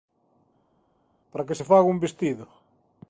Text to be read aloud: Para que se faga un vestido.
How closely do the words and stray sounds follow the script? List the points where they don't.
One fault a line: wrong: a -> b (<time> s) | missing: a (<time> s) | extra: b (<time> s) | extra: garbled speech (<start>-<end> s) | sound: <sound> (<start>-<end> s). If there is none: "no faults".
no faults